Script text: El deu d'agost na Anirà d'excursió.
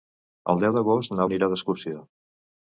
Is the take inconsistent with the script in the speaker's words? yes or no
no